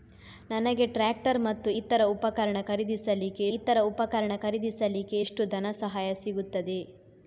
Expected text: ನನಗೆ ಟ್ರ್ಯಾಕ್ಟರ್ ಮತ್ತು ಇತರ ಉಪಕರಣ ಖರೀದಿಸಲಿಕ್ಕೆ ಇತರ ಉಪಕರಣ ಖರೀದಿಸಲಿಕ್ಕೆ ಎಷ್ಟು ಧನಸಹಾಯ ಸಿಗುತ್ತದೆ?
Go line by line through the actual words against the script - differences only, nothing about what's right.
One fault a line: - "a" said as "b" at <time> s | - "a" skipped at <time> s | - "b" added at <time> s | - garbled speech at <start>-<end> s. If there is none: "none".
none